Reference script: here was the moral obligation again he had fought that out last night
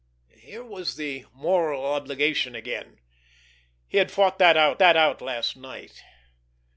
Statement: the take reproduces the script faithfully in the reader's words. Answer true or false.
false